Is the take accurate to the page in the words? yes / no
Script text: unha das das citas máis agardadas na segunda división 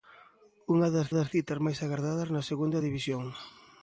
yes